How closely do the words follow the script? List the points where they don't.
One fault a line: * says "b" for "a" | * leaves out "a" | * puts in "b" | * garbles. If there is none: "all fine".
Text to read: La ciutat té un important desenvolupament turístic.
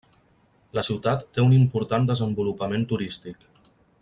all fine